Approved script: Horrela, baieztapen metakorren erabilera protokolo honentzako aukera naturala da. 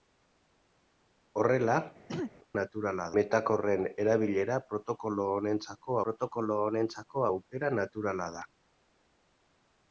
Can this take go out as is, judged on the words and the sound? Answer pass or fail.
fail